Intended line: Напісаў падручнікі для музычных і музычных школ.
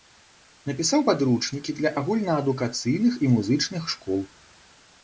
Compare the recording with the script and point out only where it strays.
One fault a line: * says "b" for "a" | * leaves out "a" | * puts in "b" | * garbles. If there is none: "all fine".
* says "агульнаадукацыйных" for "музычных"